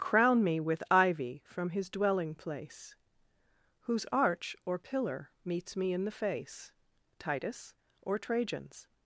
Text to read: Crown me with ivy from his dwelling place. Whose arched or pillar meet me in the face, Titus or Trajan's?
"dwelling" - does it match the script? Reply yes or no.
yes